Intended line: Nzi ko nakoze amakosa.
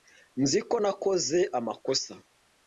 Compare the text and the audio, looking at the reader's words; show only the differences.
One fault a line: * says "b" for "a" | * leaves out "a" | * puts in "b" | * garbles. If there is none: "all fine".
all fine